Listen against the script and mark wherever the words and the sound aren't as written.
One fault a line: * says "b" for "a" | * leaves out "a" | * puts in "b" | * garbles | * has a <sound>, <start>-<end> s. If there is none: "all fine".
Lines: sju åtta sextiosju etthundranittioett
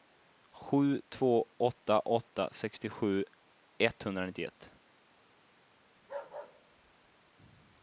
* puts in "två åtta"
* has a bark, 6.0-7.4 s